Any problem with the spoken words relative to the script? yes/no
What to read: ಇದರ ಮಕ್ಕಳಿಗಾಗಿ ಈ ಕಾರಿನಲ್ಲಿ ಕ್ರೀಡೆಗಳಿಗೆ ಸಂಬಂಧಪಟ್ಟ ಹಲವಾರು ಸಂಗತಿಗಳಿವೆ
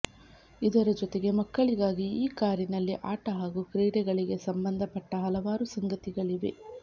yes